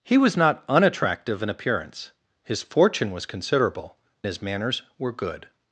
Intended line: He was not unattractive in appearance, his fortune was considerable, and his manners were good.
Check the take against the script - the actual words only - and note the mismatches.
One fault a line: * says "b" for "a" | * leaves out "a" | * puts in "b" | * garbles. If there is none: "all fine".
* leaves out "and"